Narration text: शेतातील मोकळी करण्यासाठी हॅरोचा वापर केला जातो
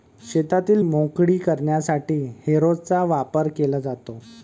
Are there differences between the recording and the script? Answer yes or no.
no